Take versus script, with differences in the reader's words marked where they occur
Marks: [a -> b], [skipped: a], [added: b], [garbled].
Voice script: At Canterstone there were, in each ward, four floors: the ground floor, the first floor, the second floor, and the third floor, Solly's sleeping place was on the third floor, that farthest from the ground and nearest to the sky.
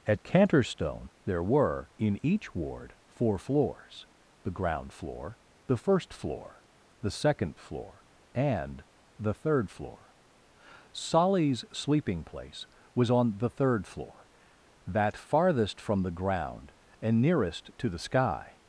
At Canterstone there were, in each ward, four floors: the ground floor, the first floor, the second floor, and the third floor, Solly's sleeping place was on the third floor, that farthest from the ground and nearest to the sky.